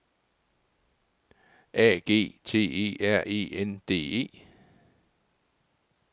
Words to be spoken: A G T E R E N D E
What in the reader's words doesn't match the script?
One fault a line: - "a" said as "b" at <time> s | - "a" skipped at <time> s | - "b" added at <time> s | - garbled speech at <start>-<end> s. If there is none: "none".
none